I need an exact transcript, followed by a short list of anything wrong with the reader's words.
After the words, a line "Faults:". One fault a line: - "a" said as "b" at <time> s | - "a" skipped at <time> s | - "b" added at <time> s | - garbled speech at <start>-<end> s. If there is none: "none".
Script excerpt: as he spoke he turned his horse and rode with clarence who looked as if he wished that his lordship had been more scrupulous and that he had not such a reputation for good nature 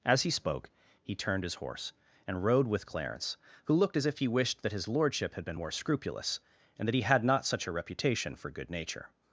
as he spoke he turned his horse and rode with clarence who looked as if he wished that his lordship had been more scrupulous and that he had not such a reputation for good nature
Faults:
none